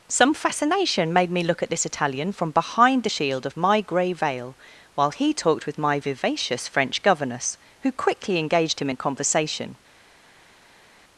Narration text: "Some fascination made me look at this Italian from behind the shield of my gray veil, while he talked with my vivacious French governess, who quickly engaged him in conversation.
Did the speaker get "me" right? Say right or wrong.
right